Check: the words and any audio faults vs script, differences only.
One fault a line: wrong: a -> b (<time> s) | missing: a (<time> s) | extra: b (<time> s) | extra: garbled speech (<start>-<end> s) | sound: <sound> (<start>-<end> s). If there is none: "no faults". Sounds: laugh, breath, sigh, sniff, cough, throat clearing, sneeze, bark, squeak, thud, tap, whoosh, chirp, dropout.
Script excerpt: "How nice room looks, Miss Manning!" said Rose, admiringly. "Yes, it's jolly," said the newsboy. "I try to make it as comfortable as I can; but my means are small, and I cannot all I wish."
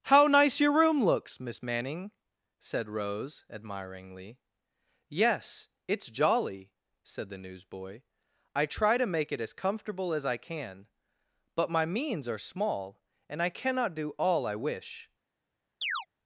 extra: your (0.6 s)
extra: do (13.9 s)
sound: chirp (15.8-16.1 s)